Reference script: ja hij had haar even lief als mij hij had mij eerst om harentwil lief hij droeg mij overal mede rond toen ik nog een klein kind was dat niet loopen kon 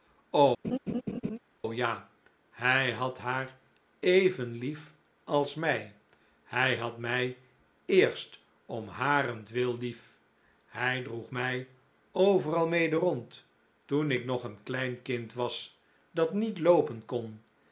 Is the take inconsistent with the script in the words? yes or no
no